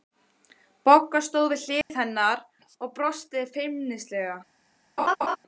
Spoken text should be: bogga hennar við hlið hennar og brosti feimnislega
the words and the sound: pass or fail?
fail